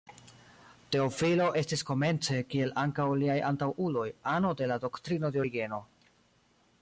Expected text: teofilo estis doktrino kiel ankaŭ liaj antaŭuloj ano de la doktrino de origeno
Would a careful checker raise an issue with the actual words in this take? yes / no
yes